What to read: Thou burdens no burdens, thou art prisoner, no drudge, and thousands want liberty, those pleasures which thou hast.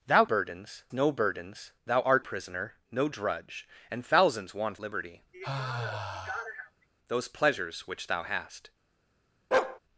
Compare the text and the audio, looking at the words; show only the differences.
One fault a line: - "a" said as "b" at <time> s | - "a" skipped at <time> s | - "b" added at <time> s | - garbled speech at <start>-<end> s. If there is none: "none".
none